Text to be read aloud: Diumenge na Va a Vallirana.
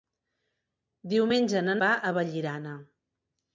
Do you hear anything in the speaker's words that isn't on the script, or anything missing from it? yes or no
no